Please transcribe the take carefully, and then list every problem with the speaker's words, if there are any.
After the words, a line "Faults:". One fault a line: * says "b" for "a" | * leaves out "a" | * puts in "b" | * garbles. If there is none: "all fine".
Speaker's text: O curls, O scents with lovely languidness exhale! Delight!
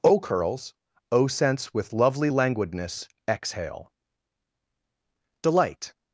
O curls, O scents with lovely languidness exhale! Delight!
Faults:
all fine